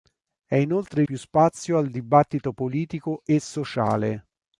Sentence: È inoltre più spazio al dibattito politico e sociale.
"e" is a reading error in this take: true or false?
false